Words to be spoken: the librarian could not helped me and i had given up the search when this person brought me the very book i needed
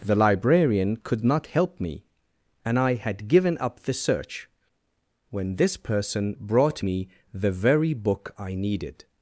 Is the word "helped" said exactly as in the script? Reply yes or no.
no